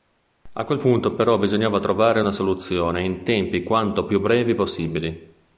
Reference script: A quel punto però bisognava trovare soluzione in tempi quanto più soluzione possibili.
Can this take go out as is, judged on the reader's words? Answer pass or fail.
fail